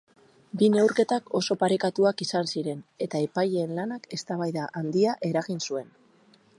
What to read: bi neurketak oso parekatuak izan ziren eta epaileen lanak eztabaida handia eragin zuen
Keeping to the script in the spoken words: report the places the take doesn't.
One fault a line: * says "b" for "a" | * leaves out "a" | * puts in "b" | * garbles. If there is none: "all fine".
all fine